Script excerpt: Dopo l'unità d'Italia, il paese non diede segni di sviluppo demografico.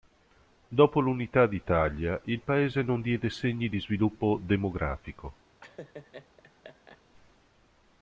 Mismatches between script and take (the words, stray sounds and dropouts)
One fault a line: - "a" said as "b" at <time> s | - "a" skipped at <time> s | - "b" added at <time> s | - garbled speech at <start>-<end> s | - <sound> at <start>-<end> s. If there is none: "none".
- laugh at 5.6-7.0 s